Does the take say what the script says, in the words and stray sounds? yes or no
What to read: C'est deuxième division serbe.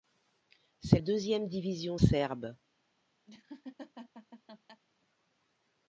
no